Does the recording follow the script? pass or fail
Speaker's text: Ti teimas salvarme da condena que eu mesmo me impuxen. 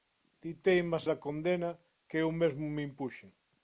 fail